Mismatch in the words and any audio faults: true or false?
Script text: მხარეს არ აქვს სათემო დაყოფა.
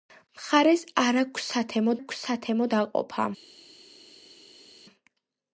true